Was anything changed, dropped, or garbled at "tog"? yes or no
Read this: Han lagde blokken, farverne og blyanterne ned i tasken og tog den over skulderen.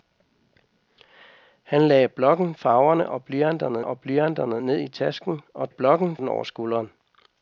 yes